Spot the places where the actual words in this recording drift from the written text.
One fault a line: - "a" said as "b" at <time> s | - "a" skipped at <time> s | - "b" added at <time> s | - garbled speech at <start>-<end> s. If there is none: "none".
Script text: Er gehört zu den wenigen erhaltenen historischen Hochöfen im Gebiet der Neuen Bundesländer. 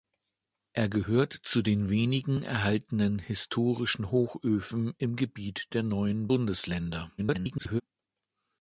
- garbled speech at 7.2-7.8 s